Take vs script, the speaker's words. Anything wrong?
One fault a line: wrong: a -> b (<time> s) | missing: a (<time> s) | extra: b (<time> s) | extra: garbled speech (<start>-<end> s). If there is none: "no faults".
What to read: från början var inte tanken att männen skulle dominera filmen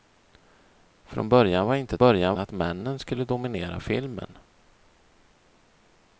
wrong: tanken -> början (2.0 s)